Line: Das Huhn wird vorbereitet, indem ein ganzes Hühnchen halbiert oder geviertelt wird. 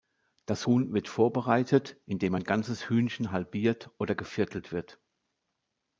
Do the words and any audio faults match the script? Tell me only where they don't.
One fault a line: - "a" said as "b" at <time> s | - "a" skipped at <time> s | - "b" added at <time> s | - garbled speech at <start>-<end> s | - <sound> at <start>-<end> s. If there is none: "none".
none